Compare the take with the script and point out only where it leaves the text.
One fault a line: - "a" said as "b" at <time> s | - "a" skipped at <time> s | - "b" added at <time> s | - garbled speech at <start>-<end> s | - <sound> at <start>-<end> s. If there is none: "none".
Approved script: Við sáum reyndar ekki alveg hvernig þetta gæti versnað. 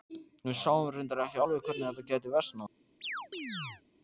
- chirp at 3.0-3.8 s